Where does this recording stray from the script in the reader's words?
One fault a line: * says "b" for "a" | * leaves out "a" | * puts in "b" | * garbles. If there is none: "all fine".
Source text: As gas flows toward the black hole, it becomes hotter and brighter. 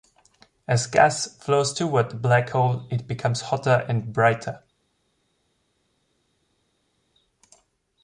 all fine